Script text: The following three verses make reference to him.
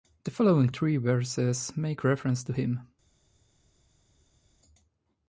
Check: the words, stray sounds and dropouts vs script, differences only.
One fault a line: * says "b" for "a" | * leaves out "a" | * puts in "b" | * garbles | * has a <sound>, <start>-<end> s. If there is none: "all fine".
all fine